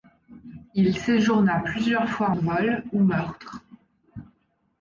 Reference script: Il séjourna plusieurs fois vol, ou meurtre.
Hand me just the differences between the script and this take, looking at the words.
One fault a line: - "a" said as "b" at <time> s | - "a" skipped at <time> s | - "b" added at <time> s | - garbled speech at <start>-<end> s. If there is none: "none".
none